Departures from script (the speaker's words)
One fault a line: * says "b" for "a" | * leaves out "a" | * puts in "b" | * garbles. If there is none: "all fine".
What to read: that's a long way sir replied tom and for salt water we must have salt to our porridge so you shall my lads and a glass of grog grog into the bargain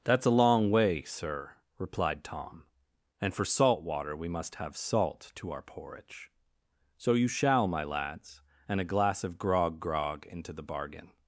all fine